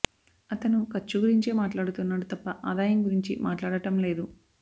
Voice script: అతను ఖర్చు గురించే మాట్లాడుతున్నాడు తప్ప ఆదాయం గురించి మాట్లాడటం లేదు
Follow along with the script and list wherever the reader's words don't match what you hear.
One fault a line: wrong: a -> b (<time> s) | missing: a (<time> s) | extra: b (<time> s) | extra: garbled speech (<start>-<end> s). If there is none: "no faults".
no faults